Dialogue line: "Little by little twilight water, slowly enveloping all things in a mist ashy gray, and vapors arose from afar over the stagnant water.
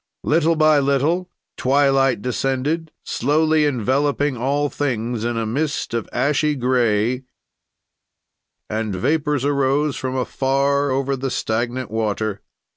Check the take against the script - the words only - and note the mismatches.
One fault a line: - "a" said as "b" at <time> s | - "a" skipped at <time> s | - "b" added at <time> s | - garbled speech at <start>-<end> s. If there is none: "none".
- "water" said as "descended" at 2.2 s
- "of" added at 5.9 s